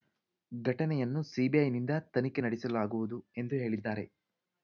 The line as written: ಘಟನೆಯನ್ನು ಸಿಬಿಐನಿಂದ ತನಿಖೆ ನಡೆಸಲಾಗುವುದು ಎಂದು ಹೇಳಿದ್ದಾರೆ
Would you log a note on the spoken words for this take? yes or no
no